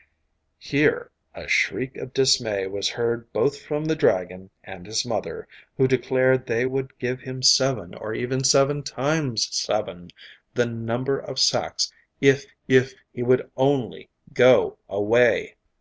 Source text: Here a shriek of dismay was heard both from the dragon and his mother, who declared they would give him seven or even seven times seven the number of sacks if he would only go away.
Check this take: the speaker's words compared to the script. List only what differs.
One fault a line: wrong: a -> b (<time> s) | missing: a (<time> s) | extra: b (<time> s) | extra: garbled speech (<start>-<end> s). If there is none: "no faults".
extra: if (12.7 s)